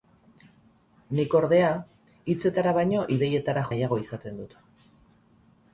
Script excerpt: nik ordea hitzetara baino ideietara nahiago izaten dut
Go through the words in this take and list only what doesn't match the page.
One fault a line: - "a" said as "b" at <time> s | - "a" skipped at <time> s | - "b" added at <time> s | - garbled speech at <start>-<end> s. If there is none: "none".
none